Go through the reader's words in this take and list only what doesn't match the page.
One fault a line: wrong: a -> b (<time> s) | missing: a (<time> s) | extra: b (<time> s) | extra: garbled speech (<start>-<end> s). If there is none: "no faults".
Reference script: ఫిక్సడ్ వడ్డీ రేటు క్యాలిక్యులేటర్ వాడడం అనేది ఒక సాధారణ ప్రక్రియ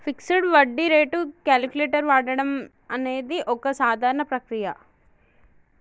no faults